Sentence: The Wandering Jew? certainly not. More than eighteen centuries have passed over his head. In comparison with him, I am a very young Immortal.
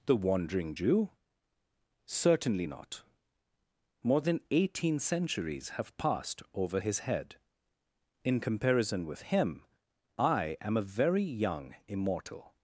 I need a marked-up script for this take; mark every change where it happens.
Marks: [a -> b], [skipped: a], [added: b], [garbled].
The Wandering Jew? certainly not. More than eighteen centuries have passed over his head. In comparison with him, I am a very young Immortal.